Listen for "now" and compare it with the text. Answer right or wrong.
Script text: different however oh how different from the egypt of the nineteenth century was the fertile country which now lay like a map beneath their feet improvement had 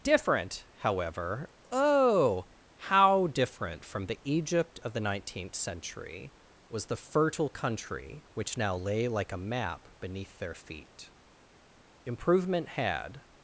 right